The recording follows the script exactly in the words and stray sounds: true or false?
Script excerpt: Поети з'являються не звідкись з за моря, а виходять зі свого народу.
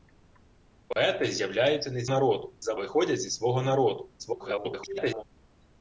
false